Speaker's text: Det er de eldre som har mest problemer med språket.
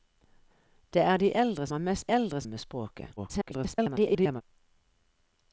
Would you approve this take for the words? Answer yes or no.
no